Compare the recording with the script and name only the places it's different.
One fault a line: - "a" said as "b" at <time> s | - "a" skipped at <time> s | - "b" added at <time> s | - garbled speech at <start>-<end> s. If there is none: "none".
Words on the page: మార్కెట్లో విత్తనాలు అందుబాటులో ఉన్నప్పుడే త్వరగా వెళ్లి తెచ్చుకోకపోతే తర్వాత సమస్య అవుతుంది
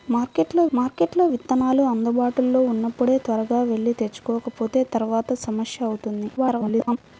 - "మార్కెట్లో" added at 0.7 s
- garbled speech at 6.4-7.0 s